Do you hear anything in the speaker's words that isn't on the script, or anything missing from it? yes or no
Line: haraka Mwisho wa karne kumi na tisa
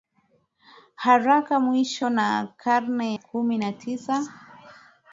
no